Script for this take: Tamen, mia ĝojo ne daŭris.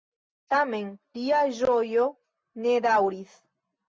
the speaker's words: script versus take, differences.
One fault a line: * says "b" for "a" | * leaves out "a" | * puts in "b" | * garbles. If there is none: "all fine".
* says "lia" for "mia"